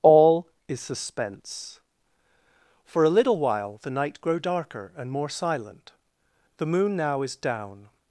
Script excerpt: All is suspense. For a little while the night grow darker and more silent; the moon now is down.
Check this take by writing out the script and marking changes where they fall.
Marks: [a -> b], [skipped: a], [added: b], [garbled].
All is suspense. For a little while the night grow darker and more silent; the moon now is down.